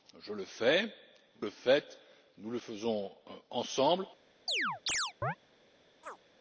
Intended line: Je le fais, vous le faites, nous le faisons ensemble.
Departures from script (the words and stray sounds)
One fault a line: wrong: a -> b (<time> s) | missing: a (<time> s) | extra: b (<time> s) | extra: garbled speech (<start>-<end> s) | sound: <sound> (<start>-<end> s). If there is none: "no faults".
missing: vous (0.9 s)
sound: chirp (4.5-5.4 s)
sound: chirp (6.0-6.2 s)